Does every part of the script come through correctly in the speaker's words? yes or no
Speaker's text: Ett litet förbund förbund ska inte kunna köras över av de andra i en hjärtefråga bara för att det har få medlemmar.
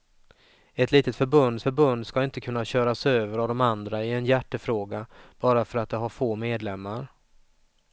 yes